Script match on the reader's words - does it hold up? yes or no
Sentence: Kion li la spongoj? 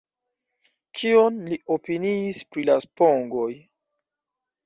no